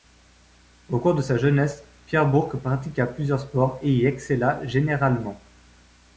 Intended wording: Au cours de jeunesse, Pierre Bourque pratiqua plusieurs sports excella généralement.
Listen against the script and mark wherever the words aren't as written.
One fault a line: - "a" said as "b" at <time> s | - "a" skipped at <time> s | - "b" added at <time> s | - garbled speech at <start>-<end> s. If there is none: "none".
- "sa" added at 1.2 s
- "et y" added at 3.8 s